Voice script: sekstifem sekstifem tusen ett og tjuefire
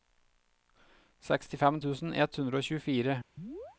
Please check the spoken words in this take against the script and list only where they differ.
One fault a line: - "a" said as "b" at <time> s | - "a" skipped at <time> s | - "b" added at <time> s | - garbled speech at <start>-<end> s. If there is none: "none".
- "sekstifem" skipped at 1.8 s
- "hundre" added at 2.4 s